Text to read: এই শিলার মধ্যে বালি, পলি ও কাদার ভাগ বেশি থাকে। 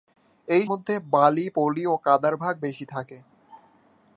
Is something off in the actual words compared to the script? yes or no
yes